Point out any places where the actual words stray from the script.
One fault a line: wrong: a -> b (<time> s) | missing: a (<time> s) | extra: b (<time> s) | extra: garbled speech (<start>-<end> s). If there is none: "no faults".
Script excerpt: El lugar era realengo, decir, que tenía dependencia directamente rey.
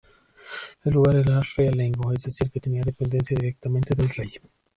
extra: es (2.1 s)
extra: del (3.9 s)